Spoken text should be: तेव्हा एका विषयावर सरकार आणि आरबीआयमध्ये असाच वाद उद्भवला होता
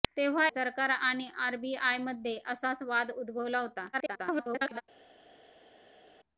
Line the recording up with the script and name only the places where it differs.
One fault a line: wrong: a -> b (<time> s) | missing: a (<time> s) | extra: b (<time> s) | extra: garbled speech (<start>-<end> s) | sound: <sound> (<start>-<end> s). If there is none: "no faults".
missing: एका विषयावर (0.5 s)
extra: garbled speech (3.9-4.8 s)